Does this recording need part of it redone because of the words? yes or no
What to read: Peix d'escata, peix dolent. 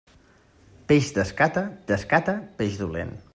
yes